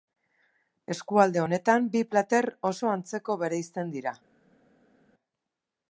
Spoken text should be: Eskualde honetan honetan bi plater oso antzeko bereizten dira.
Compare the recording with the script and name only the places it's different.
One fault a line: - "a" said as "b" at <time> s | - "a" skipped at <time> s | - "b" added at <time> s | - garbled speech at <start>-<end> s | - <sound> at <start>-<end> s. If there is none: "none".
- "honetan" skipped at 1.9 s